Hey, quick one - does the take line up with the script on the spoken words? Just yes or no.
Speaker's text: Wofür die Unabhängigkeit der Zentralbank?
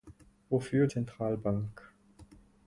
no